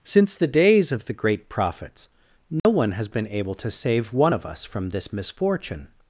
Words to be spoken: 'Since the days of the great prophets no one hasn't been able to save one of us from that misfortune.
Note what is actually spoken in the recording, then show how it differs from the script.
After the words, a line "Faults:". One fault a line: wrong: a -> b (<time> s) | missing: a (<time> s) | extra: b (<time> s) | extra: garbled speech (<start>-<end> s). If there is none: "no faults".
'Since the days of the great prophets no one has been able to save one of us from this misfortune.
Faults:
wrong: hasn't -> has (2.9 s)
wrong: that -> this (4.9 s)